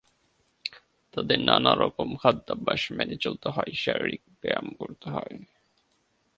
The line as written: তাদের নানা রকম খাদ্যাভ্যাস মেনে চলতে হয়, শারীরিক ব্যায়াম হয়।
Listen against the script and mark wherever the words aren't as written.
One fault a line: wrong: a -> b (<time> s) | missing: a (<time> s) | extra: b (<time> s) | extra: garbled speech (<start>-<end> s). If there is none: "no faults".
extra: করতে (4.8 s)